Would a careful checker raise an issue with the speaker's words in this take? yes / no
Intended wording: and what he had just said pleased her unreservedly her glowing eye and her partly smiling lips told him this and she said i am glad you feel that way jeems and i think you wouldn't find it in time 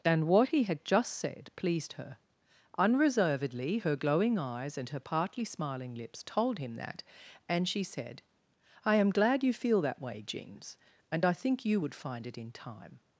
yes